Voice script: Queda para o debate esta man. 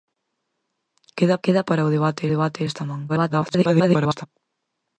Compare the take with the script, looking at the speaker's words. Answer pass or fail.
fail